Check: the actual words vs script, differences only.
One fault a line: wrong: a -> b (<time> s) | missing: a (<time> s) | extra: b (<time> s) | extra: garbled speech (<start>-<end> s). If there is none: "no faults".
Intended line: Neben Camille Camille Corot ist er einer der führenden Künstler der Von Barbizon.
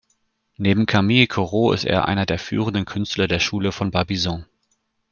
missing: Camille (1.3 s)
extra: Schule (3.4 s)